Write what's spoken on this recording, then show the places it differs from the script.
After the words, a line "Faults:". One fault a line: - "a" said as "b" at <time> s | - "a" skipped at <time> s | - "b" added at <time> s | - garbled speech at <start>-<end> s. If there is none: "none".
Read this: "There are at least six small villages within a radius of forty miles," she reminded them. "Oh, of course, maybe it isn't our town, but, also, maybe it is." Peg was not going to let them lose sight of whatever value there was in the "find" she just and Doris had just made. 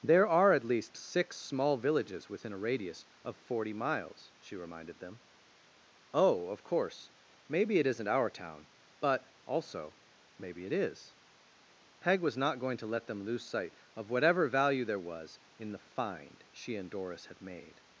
"There are at least six small villages within a radius of forty miles," she reminded them. "Oh, of course, maybe it isn't our town, but, also, maybe it is." Peg was not going to let them lose sight of whatever value there was in the "find" she and Doris had made.
Faults:
- "just" skipped at 16.8 s
- "just" skipped at 17.4 s